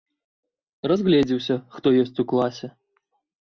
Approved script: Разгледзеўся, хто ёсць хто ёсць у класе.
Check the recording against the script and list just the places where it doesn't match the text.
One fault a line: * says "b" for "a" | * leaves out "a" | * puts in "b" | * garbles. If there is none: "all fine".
* leaves out "хто ёсць"